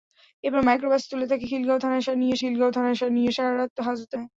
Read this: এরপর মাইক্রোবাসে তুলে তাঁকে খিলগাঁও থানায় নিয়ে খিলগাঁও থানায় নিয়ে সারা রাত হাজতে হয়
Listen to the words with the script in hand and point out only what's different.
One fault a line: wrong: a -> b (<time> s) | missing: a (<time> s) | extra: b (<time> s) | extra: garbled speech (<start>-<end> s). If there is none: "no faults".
no faults